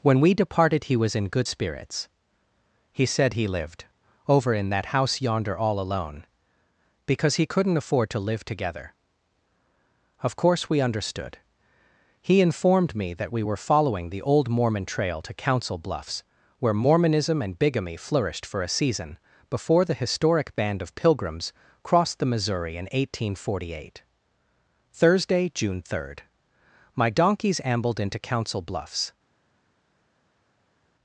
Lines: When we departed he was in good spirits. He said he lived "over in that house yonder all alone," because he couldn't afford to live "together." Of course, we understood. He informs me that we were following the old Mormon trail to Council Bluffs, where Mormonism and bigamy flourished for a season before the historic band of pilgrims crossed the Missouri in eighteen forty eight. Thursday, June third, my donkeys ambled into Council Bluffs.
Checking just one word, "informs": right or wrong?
wrong